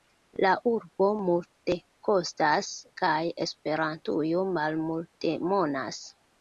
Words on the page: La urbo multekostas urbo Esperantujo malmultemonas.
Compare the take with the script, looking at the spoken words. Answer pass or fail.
fail